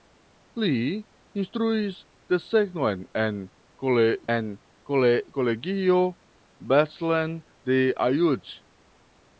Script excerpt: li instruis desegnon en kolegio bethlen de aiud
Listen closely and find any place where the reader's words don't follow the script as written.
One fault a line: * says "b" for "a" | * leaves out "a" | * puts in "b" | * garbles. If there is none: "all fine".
* puts in "en"